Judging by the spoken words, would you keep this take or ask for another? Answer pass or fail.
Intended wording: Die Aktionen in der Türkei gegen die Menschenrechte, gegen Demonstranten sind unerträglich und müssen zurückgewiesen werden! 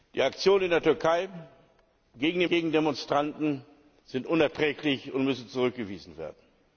fail